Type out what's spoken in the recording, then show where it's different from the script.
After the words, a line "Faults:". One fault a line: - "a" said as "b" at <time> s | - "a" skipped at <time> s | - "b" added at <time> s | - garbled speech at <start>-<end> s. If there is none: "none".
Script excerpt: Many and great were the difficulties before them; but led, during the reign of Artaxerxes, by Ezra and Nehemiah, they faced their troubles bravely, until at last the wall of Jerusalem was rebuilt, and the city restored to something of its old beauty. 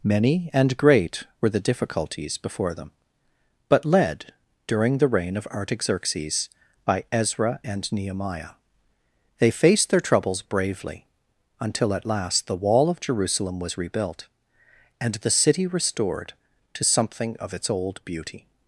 Many and great were the difficulties before them; but led, during the reign of Artaxerxes, by Ezra and Nehemiah, they faced their troubles bravely, until at last the wall of Jerusalem was rebuilt, and the city restored to something of its old beauty.
Faults:
none